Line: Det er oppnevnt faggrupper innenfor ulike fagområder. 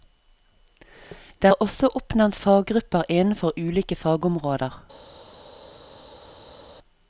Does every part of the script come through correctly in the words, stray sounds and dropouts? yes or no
no